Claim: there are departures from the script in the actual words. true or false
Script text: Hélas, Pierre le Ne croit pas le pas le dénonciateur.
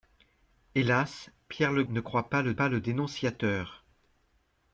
false